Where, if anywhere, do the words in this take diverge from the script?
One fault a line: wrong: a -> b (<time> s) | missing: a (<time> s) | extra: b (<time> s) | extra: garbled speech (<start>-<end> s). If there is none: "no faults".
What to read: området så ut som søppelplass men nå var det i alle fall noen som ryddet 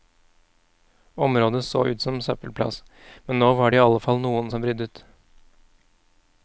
no faults